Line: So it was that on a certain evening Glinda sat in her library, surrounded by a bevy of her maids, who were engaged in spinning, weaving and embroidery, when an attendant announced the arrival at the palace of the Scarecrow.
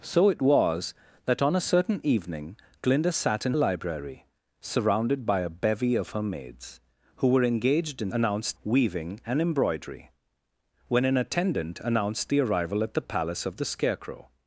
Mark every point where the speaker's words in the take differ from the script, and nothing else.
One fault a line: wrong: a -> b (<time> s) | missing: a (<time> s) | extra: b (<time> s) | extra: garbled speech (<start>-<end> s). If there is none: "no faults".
missing: her (3.5 s)
wrong: spinning -> announced (8.1 s)